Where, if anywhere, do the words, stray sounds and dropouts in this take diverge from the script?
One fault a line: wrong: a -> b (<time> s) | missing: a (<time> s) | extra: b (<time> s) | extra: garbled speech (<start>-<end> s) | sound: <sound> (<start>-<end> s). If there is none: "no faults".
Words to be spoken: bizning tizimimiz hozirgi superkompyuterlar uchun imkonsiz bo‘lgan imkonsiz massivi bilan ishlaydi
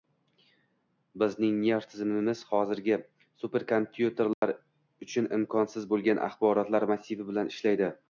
extra: nerv (1.6 s)
sound: dropout (4.3-4.4 s)
wrong: imkonsiz -> axborotlar (6.3 s)